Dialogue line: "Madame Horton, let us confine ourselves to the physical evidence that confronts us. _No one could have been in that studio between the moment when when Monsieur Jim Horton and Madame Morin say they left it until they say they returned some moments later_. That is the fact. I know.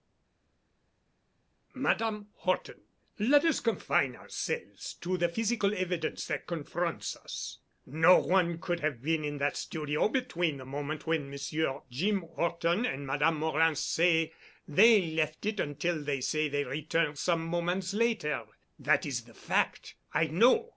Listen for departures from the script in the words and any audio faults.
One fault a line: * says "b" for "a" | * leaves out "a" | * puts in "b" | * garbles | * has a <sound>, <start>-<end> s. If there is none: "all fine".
* leaves out "when"